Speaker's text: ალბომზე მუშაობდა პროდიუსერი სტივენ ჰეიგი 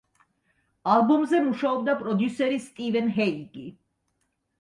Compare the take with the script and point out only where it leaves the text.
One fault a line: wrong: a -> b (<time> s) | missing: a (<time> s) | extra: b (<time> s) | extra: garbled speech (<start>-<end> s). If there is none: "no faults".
no faults